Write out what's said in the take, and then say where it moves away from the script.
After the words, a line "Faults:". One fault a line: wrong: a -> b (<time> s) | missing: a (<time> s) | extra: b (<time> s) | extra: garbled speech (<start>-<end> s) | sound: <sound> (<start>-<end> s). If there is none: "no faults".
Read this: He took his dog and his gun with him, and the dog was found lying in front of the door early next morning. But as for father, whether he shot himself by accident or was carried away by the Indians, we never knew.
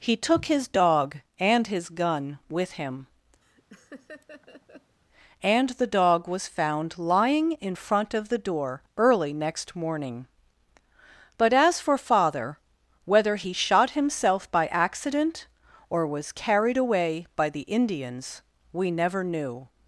He took his dog and his gun with him, and the dog was found lying in front of the door early next morning. But as for father, whether he shot himself by accident or was carried away by the Indians, we never knew.
Faults:
sound: laugh (3.4-5.0 s)